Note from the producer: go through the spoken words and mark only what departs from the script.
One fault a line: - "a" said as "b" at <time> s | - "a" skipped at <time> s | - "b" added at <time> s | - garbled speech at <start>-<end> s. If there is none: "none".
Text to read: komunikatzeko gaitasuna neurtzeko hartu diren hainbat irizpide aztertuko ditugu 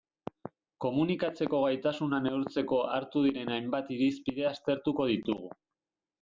none